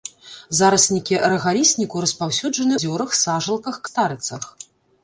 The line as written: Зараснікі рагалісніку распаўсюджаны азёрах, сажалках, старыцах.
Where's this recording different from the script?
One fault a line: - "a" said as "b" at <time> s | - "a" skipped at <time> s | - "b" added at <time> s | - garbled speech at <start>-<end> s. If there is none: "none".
none